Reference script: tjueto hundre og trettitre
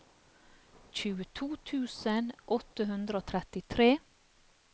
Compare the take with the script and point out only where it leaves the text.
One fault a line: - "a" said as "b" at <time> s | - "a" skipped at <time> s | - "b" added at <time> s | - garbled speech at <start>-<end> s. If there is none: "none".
- "tusen åtte" added at 1.7 s